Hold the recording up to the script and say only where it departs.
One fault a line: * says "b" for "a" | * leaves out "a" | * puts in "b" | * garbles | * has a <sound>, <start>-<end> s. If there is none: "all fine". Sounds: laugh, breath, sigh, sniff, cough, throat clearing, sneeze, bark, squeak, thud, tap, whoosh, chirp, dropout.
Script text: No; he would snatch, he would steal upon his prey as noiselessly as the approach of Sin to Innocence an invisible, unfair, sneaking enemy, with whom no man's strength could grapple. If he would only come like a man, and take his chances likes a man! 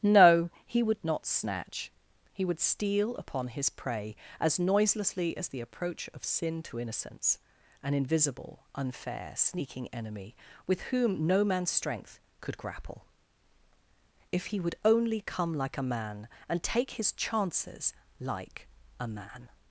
* puts in "not"
* says "like" for "likes"